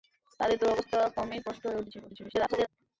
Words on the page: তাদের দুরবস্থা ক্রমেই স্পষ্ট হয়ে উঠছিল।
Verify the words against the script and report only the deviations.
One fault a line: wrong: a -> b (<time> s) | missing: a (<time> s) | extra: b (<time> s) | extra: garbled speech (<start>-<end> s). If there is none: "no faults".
extra: garbled speech (2.1-2.7 s)